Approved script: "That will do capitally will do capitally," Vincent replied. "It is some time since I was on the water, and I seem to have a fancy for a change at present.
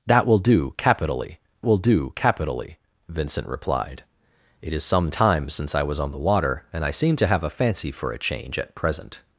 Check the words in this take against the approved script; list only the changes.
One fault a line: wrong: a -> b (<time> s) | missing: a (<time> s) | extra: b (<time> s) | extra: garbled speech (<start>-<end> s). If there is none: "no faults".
no faults